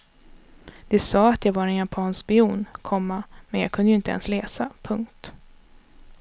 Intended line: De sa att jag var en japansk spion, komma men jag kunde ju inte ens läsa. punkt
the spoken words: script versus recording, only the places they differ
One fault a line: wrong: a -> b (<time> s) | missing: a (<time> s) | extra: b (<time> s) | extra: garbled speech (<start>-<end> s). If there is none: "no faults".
no faults